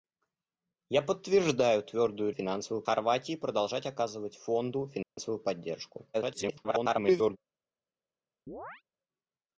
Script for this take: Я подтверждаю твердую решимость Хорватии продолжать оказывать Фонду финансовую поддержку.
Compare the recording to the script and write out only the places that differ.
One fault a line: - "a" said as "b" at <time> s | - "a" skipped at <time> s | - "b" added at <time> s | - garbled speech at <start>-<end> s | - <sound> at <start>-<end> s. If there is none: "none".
- "решимость" said as "финансовую" at 2.3 s
- dropout at 5.0-5.2 s
- garbled speech at 6.1-7.4 s
- chirp at 8.5-8.8 s